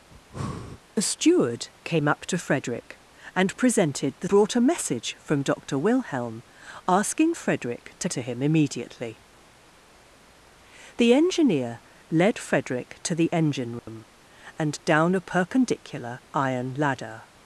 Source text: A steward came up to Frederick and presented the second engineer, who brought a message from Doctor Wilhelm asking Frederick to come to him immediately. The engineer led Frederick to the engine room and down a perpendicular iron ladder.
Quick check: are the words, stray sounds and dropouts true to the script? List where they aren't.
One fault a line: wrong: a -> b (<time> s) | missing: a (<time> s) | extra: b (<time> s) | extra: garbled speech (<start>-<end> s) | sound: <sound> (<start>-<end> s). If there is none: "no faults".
sound: breath (0.1-0.8 s)
missing: second engineer who (4.3 s)
missing: come (8.1 s)
sound: dropout (13.8-13.9 s)